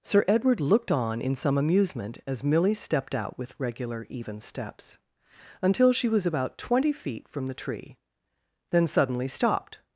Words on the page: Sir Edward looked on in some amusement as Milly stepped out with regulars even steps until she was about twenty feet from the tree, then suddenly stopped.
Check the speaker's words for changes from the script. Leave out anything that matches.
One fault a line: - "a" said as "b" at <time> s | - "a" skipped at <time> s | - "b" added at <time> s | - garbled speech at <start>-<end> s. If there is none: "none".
- "regulars" said as "regular" at 3.6 s